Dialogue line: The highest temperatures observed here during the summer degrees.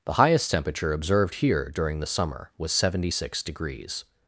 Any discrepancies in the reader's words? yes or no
yes